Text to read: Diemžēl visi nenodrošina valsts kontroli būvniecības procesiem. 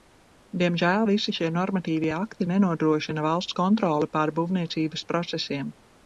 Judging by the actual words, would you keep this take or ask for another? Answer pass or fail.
fail